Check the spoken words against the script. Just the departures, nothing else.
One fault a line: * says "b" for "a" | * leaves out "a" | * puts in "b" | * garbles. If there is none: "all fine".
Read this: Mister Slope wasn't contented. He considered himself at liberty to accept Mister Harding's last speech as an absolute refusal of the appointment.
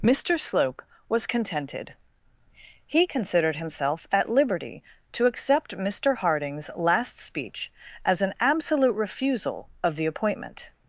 * says "was" for "wasn't"